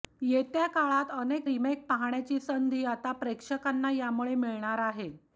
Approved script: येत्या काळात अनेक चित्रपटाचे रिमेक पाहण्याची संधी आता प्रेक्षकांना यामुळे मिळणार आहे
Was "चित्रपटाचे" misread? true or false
true